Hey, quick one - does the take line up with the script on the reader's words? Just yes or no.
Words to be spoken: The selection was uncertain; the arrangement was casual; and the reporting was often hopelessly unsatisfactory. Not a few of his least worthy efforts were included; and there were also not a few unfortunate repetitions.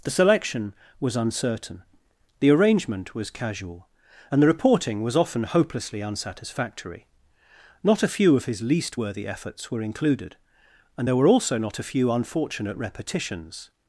yes